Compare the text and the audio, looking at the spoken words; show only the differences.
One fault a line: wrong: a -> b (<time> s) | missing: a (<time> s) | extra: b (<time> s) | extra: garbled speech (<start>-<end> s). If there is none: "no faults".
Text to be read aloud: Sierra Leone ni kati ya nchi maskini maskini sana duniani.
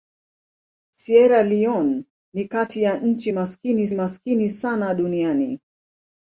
no faults